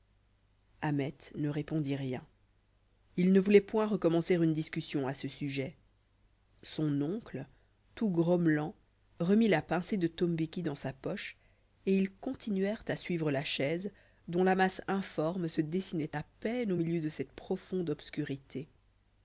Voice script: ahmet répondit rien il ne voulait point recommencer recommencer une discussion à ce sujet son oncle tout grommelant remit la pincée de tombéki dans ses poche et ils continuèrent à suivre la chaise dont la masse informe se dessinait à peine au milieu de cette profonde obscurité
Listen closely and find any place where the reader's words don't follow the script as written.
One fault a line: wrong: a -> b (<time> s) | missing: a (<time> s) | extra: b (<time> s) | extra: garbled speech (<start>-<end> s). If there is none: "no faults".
extra: ne (1.4 s)
missing: recommencer (4.3 s)
wrong: ses -> sa (10.7 s)